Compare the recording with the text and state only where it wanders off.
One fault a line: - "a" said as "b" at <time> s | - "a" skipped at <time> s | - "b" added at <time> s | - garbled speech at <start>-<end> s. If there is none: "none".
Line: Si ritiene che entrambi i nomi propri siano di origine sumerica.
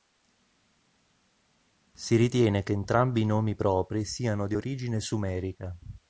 none